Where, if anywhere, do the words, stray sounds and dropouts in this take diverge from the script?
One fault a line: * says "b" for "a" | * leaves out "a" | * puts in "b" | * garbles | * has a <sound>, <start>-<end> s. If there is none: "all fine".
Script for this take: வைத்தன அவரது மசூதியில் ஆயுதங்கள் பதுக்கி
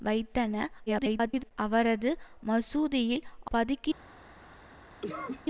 * garbles
* leaves out "ஆயுதங்கள்"
* has a cough, 5.0-5.4 s